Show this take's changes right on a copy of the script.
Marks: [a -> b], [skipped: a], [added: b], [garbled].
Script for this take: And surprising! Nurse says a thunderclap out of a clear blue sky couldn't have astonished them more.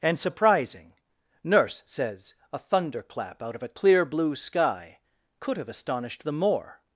And surprising! Nurse says a thunderclap out of a clear blue sky [couldn't -> could] have astonished them more.